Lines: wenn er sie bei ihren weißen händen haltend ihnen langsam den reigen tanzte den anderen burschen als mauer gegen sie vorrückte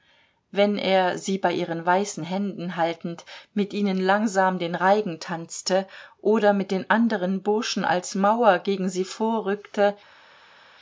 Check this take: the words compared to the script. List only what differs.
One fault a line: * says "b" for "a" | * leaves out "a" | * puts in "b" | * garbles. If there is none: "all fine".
* puts in "mit"
* puts in "oder mit"